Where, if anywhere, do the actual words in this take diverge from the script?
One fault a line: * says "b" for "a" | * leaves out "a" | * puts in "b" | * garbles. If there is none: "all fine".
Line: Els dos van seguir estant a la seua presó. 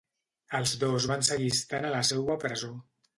all fine